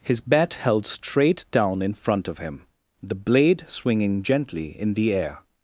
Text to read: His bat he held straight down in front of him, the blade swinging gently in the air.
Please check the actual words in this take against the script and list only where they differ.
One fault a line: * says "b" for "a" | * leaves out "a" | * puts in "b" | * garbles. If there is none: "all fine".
* leaves out "he"